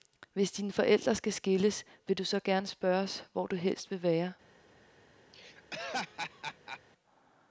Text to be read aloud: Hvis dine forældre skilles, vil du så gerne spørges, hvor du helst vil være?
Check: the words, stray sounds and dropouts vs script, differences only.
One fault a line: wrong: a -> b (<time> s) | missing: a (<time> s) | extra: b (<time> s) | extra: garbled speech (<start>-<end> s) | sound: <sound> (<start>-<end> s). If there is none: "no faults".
extra: skal (1.1 s)
sound: laugh (5.3-6.8 s)